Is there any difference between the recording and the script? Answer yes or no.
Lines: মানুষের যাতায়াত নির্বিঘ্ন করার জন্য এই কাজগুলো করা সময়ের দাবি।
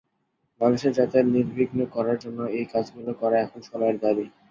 yes